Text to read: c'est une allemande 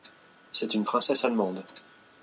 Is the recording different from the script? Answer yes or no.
yes